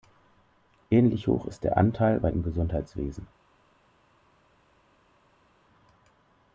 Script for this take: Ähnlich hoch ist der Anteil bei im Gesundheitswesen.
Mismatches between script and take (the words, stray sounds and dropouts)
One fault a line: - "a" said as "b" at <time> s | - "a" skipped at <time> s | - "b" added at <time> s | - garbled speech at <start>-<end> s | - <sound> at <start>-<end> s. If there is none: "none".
none